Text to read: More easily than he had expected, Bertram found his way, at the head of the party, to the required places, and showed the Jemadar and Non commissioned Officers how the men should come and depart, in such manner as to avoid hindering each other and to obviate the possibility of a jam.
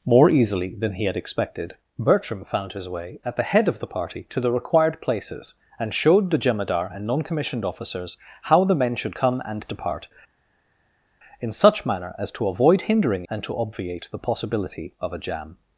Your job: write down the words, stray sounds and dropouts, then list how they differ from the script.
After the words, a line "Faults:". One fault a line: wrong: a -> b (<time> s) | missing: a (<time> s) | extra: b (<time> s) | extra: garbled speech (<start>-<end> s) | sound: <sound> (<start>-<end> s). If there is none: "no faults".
More easily than he had expected, Bertram found his way, at the head of the party, to the required places, and showed the Jemadar and Non commissioned Officers how the men should come and depart, in such manner as to avoid hindering and to obviate the possibility of a jam.
Faults:
missing: each other (13.3 s)